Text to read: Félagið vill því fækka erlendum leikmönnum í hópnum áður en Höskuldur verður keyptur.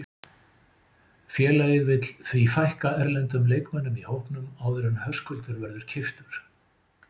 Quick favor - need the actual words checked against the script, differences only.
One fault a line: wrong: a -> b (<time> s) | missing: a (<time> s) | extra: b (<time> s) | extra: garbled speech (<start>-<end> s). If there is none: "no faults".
no faults